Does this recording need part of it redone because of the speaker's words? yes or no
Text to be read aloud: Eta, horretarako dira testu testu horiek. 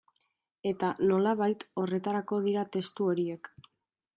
yes